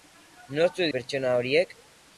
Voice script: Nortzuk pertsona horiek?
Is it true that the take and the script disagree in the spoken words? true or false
false